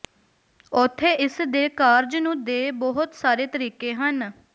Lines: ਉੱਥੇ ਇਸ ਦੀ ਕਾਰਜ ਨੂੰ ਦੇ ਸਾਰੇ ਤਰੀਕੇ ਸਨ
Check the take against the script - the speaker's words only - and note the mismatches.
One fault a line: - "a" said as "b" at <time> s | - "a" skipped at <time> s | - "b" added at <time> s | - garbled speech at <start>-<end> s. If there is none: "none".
- "ਦੀ" said as "ਦੇ" at 1.5 s
- "ਬਹੁਤ" added at 2.7 s
- "ਸਨ" said as "ਹਨ" at 3.9 s